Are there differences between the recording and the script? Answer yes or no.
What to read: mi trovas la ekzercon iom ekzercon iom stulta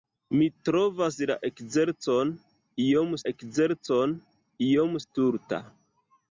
no